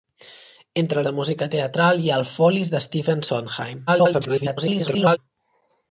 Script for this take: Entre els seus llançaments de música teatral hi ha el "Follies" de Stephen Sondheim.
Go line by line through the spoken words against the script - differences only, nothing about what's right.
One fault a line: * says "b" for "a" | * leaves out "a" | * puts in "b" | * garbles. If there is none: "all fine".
* leaves out "els seus llançaments"
* garbles